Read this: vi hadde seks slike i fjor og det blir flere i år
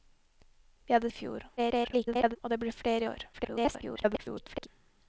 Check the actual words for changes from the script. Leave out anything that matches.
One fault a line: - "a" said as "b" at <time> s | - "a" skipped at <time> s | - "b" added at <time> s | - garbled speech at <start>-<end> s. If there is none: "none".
- "seks slike" skipped at 1.1 s
- garbled speech at 1.6-2.4 s
- garbled speech at 3.3-4.7 s